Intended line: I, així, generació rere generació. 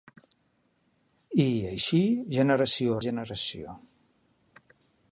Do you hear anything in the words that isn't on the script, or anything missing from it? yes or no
yes